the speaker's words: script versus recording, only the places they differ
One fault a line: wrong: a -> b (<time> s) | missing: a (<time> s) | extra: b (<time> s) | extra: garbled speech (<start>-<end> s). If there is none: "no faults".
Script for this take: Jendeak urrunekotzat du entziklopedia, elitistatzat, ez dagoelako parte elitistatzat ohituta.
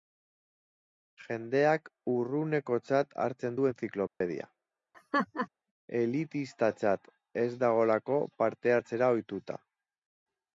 extra: hartzen (3.2 s)
wrong: elitistatzat -> hartzera (8.8 s)